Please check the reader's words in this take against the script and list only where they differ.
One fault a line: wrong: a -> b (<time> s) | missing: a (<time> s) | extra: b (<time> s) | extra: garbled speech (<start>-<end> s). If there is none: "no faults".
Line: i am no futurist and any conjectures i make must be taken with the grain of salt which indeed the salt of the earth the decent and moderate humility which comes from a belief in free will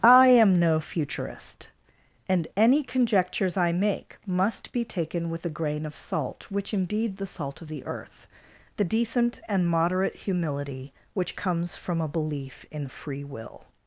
no faults